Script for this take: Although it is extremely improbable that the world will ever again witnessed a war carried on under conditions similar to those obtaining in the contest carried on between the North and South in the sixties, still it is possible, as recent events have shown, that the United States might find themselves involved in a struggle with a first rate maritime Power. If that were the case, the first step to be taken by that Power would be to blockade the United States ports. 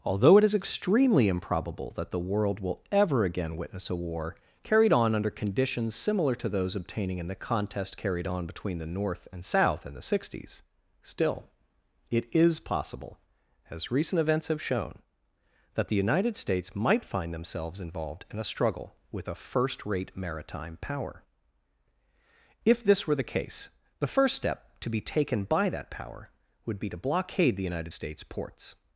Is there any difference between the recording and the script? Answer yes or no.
yes